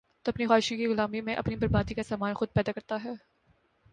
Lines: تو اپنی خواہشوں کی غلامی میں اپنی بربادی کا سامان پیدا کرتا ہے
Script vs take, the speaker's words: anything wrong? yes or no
yes